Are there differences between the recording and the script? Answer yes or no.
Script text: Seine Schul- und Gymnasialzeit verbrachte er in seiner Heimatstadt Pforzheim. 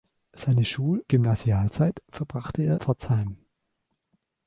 yes